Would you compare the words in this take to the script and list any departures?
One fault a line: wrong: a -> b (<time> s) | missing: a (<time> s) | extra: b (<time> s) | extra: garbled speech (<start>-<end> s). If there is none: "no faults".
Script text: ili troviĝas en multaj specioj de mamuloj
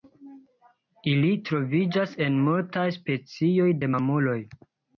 no faults